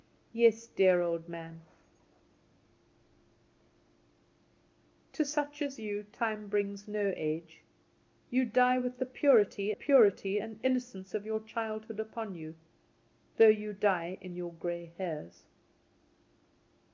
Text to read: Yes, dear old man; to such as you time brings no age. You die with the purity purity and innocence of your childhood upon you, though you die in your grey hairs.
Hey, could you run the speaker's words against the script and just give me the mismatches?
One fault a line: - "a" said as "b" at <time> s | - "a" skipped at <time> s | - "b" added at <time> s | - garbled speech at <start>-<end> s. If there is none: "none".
none